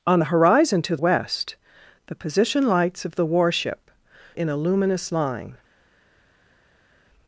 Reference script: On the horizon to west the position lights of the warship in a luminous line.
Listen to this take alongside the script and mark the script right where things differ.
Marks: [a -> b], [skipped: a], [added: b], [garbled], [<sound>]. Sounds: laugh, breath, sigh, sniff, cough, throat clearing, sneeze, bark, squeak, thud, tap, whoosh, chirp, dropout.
On the horizon to west the position lights of the warship in a luminous line.